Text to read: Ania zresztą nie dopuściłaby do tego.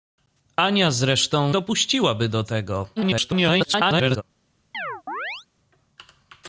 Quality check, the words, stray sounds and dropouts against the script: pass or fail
fail